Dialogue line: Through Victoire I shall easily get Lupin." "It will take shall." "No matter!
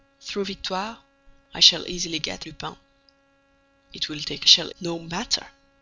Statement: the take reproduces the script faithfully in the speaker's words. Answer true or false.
true